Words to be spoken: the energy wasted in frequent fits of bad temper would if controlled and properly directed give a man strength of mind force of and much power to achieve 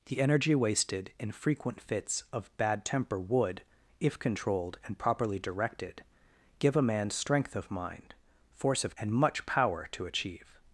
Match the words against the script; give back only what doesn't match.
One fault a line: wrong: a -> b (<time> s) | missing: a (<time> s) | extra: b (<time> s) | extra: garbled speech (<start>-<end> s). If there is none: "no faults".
no faults